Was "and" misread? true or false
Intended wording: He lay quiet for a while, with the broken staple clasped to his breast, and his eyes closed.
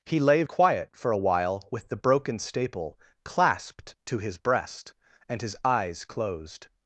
false